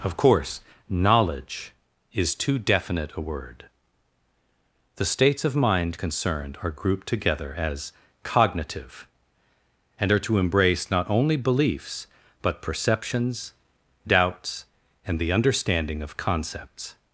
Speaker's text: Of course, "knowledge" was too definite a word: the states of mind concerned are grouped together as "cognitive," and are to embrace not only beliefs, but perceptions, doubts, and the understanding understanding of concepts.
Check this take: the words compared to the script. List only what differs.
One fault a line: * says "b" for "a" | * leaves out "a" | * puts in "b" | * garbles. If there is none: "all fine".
* says "is" for "was"
* leaves out "understanding"